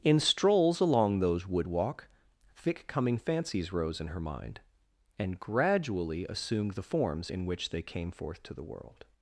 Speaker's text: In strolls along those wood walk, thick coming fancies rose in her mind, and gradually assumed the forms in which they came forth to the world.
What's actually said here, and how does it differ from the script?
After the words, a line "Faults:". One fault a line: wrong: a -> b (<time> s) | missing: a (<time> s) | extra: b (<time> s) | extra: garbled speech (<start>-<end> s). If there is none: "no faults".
In strolls along those wood walk, thick coming fancies rose in her mind, and gradually assumed the forms in which they came forth to the world.
Faults:
no faults